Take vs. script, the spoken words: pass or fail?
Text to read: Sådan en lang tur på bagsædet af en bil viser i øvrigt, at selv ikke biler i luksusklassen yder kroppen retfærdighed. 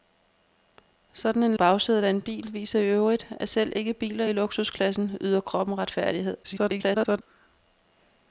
fail